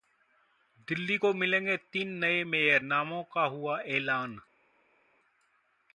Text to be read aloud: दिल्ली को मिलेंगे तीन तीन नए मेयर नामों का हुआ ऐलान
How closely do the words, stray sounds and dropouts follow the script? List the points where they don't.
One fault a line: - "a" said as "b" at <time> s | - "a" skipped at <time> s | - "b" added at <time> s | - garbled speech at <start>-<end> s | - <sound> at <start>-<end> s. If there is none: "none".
- "तीन" skipped at 2.1 s